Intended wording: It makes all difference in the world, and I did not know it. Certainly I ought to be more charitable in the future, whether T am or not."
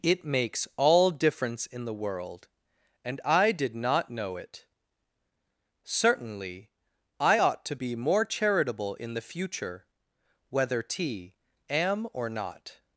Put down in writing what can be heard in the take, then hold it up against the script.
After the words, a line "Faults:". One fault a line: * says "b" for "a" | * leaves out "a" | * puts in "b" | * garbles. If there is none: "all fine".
It makes all difference in the world, and I did not know it. Certainly I ought to be more charitable in the future, whether T am or not."
Faults:
all fine